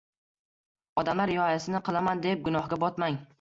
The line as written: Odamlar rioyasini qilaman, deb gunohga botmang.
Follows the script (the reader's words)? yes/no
yes